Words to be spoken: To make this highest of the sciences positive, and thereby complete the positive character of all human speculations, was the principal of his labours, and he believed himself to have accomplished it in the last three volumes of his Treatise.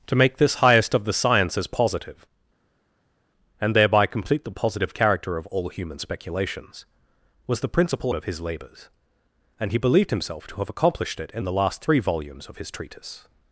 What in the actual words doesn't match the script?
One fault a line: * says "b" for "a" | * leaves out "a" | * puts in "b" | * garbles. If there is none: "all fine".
all fine